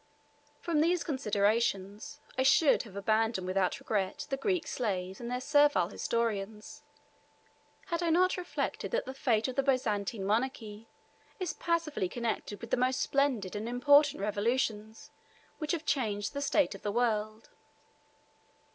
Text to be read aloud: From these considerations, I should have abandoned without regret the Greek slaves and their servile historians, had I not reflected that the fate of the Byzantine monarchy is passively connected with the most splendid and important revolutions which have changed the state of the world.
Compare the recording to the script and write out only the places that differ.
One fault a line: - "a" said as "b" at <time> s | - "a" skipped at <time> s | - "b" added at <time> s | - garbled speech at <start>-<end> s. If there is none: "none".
none